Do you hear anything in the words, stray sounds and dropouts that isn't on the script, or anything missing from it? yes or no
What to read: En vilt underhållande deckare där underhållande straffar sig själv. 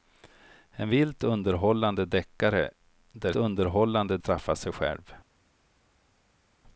no